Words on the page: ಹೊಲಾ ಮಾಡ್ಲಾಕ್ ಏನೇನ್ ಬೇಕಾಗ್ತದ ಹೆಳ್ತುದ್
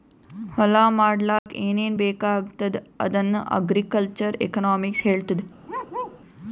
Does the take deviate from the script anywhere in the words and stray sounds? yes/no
yes